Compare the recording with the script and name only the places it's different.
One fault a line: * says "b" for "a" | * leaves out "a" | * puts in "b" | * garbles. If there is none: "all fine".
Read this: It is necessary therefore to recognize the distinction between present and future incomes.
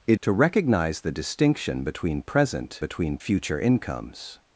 * leaves out "is necessary therefore"
* says "between" for "and"